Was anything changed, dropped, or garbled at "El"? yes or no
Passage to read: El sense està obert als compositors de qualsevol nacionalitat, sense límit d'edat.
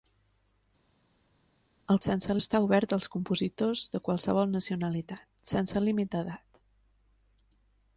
no